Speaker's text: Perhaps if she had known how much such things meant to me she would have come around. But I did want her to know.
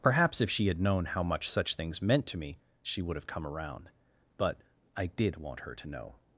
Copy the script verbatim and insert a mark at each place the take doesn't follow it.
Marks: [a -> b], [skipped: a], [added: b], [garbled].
Perhaps if she had known how much such things meant to me she would have come around. But I did want her to know.